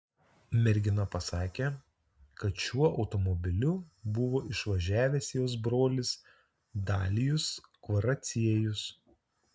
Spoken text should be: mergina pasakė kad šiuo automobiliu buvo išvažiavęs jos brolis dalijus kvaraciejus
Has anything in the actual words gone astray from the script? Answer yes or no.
no